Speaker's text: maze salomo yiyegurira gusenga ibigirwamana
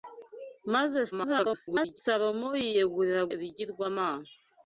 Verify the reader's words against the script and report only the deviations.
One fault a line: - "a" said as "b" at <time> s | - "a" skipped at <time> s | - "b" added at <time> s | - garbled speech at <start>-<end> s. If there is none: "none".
- garbled speech at 1.1-2.0 s
- "gusenga" skipped at 3.2 s